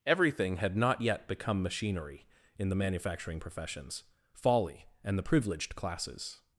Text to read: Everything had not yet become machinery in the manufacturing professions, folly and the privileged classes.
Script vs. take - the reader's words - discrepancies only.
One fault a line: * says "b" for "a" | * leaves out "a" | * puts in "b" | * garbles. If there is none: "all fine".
all fine